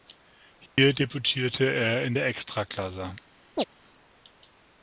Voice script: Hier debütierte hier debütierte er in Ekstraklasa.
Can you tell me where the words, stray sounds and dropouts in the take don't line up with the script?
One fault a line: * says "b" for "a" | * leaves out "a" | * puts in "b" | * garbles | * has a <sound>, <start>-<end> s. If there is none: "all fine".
* has a dropout, 0.7-0.8 s
* leaves out "hier debütierte"
* puts in "der"
* has a chirp, 3.6-3.6 s